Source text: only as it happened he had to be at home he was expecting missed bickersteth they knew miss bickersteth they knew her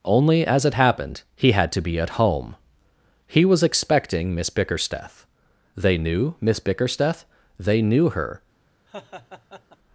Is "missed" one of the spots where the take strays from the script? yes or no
yes